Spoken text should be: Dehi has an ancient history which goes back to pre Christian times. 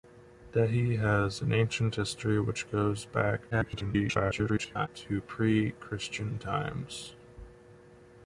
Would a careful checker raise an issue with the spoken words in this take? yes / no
yes